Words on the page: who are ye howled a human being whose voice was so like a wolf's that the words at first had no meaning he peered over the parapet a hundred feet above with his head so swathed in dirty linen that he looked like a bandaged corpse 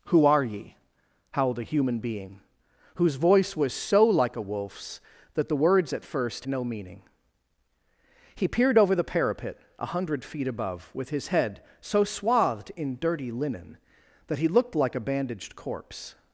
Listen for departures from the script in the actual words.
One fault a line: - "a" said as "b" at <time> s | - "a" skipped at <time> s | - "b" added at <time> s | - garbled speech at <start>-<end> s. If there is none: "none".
- "had" skipped at 6.5 s